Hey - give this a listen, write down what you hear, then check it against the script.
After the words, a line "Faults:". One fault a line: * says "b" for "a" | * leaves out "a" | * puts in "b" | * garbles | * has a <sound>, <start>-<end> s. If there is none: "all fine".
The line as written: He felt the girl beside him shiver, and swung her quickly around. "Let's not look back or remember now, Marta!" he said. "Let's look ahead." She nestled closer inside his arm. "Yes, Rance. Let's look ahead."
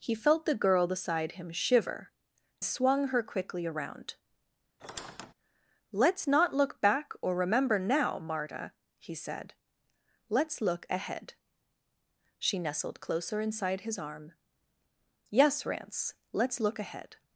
He felt the girl beside him shiver, swung her quickly around. "Let's not look back or remember now, Marta!" he said. "Let's look ahead." She nestled closer inside his arm. "Yes, Rance. Let's look ahead."
Faults:
* leaves out "and"
* has a squeak, 4.8-5.3 s